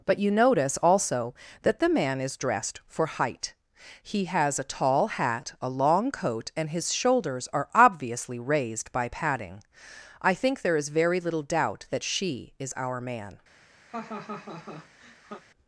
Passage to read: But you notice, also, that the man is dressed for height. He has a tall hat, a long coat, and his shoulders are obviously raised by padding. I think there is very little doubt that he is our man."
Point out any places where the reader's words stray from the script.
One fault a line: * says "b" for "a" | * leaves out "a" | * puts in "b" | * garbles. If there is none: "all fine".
* says "she" for "he"